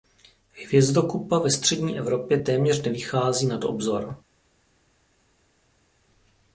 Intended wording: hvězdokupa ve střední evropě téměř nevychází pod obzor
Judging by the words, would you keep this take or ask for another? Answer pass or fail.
fail